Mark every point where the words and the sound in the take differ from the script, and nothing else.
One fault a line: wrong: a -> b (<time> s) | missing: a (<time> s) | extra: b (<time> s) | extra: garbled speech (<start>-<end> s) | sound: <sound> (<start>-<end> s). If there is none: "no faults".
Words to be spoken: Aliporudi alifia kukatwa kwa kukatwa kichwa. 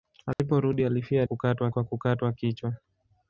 sound: dropout (0.3-0.4 s)